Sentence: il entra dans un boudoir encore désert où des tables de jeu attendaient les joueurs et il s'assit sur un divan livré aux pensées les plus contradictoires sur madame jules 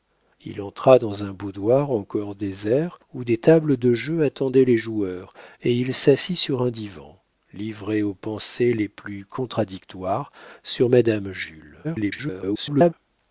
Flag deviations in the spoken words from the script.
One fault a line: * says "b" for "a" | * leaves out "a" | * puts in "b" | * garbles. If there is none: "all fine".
* garbles